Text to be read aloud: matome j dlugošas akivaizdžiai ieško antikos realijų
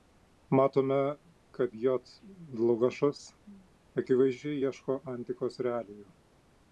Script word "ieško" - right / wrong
right